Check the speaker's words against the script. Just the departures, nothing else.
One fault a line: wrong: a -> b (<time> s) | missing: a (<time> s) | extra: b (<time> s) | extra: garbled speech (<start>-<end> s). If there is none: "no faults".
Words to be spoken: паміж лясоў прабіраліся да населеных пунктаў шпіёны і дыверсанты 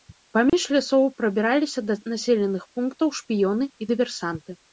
no faults